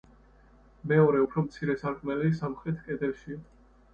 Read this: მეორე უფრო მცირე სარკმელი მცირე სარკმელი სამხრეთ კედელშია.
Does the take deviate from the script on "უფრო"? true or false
false